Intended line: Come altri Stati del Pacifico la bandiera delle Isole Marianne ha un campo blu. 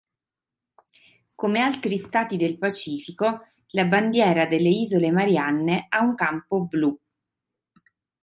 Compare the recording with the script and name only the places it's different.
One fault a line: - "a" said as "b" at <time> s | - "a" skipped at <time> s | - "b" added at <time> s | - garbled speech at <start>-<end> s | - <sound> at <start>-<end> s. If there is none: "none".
none